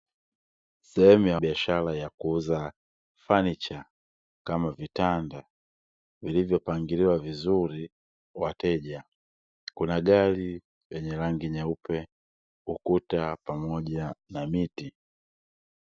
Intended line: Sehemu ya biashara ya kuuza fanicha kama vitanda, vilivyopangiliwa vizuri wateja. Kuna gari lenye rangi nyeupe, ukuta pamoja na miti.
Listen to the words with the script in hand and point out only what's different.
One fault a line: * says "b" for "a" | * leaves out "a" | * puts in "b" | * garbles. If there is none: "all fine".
all fine